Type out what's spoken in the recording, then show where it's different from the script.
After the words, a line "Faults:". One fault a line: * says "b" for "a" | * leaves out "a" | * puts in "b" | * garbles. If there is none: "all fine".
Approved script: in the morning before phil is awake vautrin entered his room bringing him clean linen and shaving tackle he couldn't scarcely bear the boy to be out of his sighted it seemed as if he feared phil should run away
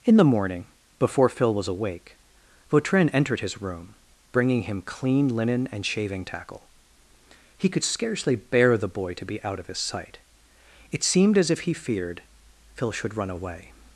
in the morning before phil was awake vautrin entered his room bringing him clean linen and shaving tackle he could scarcely bear the boy to be out of his sight it seemed as if he feared phil should run away
Faults:
* says "was" for "is"
* says "could" for "couldn't"
* says "sight" for "sighted"